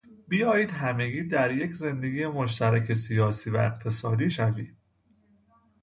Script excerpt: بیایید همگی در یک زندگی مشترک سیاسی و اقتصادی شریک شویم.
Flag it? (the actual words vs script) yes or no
yes